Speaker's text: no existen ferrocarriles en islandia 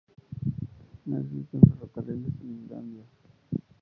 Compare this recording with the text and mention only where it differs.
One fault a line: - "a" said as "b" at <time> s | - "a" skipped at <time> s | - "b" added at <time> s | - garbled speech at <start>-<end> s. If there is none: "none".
none